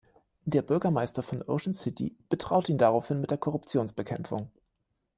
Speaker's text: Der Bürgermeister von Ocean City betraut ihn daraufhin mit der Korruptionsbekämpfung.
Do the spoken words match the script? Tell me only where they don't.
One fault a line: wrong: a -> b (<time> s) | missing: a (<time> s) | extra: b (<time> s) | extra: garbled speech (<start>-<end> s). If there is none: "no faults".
no faults